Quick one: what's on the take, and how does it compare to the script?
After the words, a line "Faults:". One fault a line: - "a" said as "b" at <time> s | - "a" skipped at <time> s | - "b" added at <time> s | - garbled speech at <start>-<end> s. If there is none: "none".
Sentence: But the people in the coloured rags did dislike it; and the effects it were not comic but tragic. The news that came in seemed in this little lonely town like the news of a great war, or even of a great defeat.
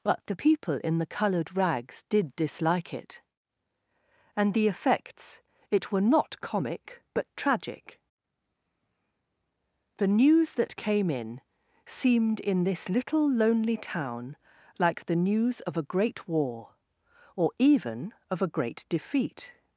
But the people in the coloured rags did dislike it; and the effects it were not comic but tragic. The news that came in seemed in this little lonely town like the news of a great war, or even of a great defeat.
Faults:
none